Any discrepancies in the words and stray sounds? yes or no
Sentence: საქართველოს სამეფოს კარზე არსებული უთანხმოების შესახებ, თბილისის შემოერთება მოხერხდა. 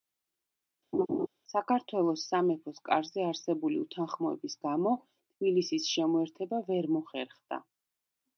yes